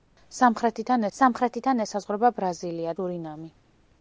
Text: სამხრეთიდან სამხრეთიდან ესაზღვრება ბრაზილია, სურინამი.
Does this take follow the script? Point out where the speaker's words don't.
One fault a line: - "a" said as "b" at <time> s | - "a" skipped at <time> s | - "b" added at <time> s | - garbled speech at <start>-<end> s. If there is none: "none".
none